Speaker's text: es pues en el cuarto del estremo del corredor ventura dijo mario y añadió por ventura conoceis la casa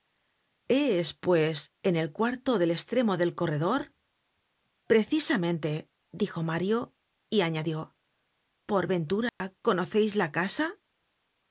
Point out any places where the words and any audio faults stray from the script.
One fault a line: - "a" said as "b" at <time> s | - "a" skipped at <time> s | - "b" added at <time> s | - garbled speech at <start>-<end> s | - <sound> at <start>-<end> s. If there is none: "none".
- "ventura" said as "precisamente" at 4.9 s
- dropout at 9.3-9.4 s